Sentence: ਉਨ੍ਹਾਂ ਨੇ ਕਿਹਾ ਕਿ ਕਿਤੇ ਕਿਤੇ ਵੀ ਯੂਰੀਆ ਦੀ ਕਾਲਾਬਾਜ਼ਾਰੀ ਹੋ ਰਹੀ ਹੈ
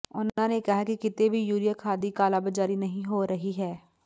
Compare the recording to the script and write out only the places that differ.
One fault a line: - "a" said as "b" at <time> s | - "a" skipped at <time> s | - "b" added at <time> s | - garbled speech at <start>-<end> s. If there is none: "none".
- "ਕਿਤੇ" skipped at 1.3 s
- "ਖਾਦ" added at 1.8 s
- "ਨਹੀਂ" added at 2.8 s